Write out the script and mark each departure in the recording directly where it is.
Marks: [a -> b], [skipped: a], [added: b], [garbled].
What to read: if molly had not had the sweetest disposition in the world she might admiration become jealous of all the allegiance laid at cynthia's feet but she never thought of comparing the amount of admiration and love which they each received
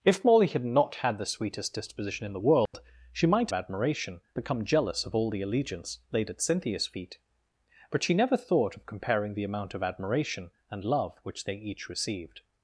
if molly had not had the sweetest disposition in the world she might admiration become jealous of all the allegiance laid at cynthia's feet but she never thought of comparing the amount of admiration and love which they each received